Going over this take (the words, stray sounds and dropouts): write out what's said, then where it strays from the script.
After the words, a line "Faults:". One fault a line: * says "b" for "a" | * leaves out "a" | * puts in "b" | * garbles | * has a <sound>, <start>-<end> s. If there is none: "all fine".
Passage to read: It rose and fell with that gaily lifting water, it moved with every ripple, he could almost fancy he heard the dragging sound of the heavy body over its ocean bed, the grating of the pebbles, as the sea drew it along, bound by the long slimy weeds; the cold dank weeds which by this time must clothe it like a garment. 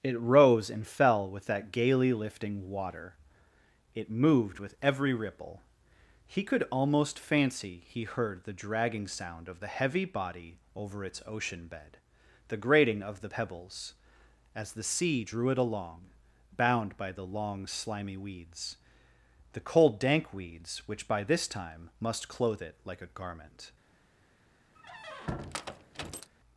It rose and fell with that gaily lifting water, it moved with every ripple, he could almost fancy he heard the dragging sound of the heavy body over its ocean bed, the grating of the pebbles, as the sea drew it along, bound by the long slimy weeds; the cold dank weeds which by this time must clothe it like a garment.
Faults:
* has a squeak, 24.7-26.3 s